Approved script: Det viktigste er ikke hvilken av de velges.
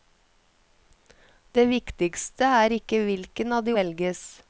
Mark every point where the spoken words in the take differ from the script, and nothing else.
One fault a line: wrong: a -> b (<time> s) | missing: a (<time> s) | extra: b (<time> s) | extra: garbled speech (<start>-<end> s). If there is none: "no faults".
no faults